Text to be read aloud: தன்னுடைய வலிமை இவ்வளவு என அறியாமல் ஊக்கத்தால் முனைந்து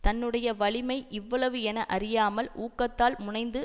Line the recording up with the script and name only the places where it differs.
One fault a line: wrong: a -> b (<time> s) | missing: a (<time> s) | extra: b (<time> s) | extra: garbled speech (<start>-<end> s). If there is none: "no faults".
no faults